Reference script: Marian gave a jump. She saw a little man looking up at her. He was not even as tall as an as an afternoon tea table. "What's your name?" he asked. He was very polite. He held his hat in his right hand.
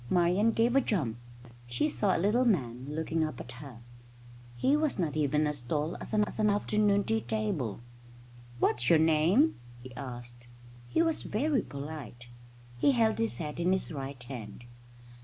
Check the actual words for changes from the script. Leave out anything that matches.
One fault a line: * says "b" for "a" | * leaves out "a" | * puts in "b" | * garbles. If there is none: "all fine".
all fine